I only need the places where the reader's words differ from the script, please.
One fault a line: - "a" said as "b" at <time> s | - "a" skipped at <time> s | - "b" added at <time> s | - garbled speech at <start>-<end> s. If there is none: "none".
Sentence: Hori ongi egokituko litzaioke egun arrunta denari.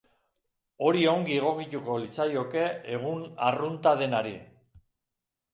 none